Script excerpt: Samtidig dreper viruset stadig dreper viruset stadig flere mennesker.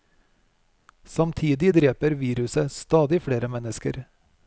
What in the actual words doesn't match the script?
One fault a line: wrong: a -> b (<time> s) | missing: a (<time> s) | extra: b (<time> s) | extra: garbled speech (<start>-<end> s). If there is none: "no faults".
missing: dreper viruset stadig (3.2 s)